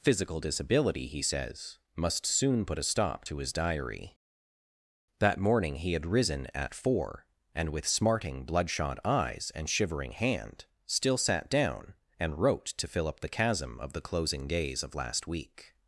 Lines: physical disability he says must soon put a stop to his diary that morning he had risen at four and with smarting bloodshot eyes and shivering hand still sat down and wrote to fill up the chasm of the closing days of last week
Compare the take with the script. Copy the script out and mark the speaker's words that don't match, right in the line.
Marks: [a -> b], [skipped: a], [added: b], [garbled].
physical disability he says must soon put a stop to his diary that morning he had risen at four and with smarting bloodshot eyes and shivering hand still sat down and wrote to fill up the chasm of the closing days of last week